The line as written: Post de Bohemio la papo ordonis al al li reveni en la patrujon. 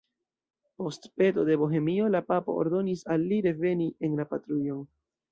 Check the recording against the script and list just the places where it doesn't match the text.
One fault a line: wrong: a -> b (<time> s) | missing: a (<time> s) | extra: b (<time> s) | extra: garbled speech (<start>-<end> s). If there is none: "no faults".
extra: peto (1.2 s)
missing: al (3.3 s)